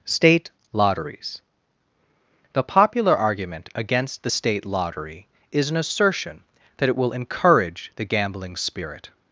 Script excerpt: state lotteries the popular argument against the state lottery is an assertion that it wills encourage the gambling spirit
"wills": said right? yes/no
no